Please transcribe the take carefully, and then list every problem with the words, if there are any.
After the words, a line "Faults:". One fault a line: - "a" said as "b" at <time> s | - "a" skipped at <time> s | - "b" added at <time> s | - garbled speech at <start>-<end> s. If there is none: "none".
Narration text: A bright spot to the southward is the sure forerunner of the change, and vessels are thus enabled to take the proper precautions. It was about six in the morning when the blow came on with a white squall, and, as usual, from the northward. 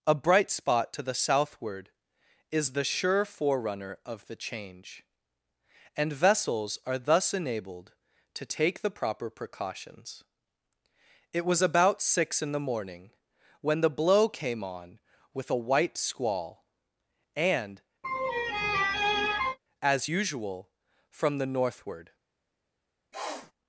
A bright spot to the southward is the sure forerunner of the change, and vessels are thus enabled to take the proper precautions. It was about six in the morning when the blow came on with a white squall, and, as usual, from the northward.
Faults:
none